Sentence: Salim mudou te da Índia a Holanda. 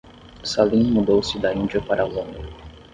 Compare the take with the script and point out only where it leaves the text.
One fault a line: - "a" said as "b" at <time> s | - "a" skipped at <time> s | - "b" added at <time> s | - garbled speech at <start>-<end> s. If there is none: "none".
- "te" said as "se" at 1.2 s
- "para" added at 1.8 s